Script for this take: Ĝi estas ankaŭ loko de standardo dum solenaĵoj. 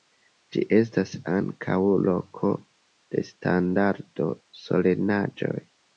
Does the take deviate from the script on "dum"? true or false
true